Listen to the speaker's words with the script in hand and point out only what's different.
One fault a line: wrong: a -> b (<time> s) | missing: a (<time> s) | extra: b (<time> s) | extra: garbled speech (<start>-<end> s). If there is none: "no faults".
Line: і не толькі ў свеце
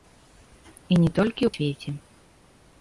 no faults